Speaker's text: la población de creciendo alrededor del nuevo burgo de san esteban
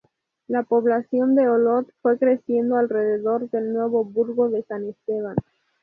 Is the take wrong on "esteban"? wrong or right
right